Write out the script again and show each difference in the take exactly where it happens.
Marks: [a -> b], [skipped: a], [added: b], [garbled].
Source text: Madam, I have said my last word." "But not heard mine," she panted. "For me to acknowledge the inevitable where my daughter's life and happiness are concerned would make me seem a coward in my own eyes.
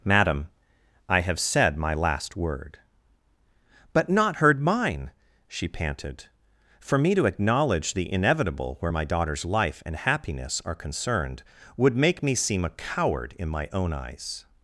Madam, I have said my last word." "But not heard mine," she panted. "For me to acknowledge the inevitable where my daughter's life and happiness are concerned would make me seem a coward in my own eyes.